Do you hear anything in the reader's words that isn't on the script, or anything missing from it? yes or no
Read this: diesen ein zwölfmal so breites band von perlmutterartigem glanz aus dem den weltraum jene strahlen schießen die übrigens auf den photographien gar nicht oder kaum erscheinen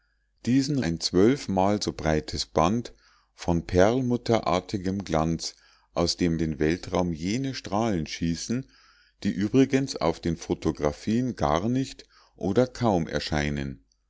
no